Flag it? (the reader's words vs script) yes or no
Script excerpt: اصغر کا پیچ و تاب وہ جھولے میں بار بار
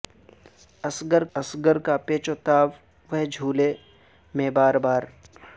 yes